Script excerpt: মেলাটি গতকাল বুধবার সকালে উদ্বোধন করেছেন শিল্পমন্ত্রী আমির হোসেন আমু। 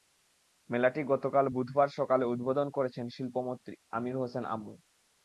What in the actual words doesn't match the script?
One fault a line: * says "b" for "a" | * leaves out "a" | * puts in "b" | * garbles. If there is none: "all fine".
all fine